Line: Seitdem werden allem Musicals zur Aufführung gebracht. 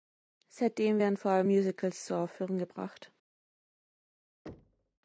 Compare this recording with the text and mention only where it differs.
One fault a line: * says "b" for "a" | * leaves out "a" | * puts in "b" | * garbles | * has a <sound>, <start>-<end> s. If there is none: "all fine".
* puts in "vor"
* has a thud, 4.5-5.0 s